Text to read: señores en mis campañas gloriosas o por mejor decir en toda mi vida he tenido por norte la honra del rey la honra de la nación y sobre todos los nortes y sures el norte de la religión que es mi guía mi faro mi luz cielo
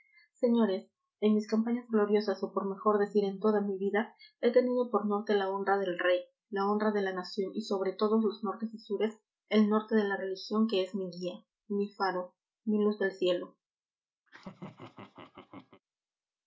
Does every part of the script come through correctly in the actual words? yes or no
no